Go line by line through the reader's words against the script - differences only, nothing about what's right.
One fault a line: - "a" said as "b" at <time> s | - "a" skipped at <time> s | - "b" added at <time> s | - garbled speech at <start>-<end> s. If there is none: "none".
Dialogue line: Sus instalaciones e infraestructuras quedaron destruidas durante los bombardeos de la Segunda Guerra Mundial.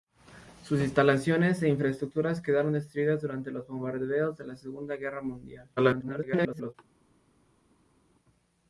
- garbled speech at 5.8-6.7 s